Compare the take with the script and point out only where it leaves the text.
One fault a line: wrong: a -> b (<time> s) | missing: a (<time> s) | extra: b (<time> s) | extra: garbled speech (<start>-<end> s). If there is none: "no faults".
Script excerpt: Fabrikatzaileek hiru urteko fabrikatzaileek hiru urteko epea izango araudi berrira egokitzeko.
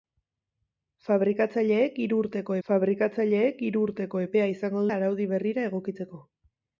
no faults